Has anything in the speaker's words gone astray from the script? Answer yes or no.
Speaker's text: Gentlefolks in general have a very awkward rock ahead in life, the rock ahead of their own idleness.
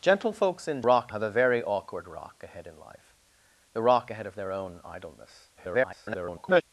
yes